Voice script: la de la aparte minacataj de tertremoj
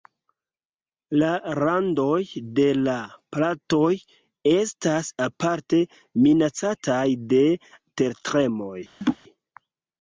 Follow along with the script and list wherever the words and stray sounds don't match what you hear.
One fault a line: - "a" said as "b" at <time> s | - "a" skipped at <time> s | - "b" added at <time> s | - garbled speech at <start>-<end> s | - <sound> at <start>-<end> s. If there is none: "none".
- "randoj" added at 1.6 s
- "platoj estas" added at 3.4 s
- laugh at 9.0-9.2 s